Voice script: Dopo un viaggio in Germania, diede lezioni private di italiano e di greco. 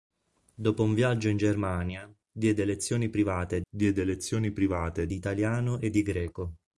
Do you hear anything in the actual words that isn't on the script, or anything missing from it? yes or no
yes